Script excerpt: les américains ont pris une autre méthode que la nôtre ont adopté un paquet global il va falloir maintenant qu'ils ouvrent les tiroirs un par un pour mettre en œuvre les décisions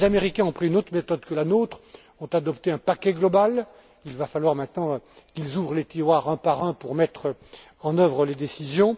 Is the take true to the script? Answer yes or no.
yes